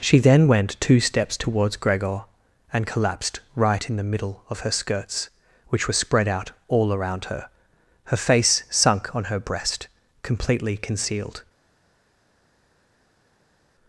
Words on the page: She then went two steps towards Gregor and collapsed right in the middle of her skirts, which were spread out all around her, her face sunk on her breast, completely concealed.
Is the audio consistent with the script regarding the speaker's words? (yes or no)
yes